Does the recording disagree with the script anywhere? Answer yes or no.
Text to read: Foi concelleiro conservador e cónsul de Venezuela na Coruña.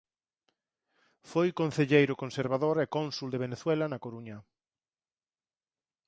no